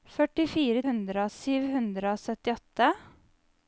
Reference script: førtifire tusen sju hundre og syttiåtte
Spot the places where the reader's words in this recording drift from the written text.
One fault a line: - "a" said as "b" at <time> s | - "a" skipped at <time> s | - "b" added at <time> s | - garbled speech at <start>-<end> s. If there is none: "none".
- "tusen" said as "hundre" at 0.9 s